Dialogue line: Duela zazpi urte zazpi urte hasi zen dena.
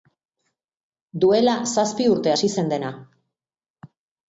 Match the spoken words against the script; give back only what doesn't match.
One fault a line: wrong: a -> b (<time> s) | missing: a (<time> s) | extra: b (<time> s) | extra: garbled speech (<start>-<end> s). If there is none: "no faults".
missing: zazpi urte (2.3 s)